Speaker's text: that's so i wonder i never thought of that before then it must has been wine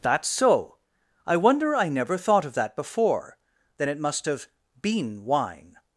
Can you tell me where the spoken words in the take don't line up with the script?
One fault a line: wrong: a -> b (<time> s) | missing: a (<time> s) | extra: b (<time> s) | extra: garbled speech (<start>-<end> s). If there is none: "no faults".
wrong: has -> have (4.3 s)